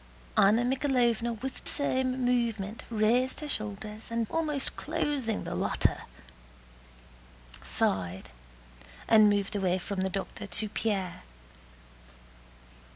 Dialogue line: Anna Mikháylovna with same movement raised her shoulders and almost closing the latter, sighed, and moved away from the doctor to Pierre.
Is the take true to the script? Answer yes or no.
yes